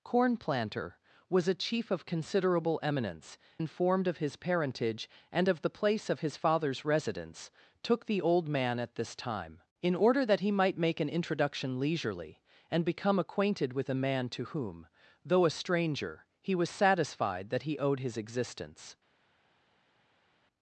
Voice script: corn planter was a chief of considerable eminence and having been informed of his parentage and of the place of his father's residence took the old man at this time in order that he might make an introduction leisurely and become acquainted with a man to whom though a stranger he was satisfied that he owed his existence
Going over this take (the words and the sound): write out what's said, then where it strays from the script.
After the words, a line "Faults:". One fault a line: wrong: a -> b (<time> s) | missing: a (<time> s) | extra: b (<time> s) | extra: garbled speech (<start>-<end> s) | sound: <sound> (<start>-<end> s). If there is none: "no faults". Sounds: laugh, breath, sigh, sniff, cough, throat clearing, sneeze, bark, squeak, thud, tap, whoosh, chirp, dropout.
corn planter was a chief of considerable eminence informed of his parentage and of the place of his father's residence took the old man at this time in order that he might make an introduction leisurely and become acquainted with a man to whom though a stranger he was satisfied that he owed his existence
Faults:
missing: and having been (3.4 s)